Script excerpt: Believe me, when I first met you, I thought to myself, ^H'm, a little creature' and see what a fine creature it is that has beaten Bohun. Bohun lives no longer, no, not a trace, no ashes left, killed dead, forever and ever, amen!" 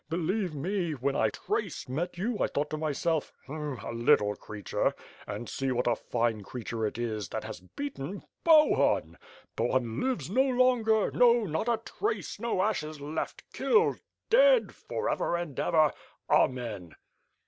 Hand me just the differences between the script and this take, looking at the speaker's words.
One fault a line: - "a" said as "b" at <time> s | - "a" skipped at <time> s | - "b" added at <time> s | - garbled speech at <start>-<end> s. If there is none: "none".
- "first" said as "trace" at 1.3 s